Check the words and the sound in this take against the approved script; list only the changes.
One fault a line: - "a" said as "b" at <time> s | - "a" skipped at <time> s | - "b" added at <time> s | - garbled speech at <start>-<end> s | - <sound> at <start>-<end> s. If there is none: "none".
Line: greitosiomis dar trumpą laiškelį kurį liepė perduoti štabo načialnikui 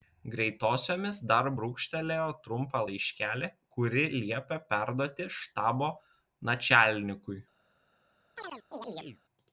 - "brūkštelėjo" added at 1.6 s
- chirp at 8.4-9.2 s